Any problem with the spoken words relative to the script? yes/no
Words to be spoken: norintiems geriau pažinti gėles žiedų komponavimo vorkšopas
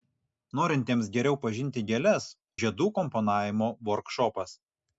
no